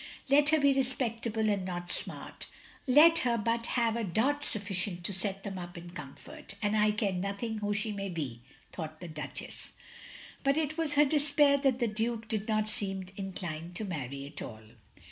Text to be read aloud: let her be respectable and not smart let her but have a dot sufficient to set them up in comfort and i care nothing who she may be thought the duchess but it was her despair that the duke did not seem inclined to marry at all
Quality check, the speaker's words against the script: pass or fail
pass